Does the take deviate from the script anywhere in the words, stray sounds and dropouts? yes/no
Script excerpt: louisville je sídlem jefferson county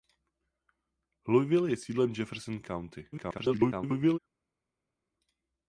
yes